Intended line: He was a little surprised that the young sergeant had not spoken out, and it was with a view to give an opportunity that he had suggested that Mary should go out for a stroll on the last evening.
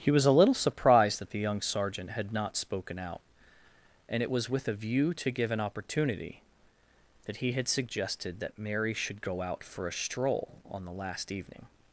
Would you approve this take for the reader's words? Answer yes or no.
yes